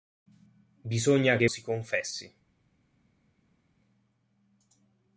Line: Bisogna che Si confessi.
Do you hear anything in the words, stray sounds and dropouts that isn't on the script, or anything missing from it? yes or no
no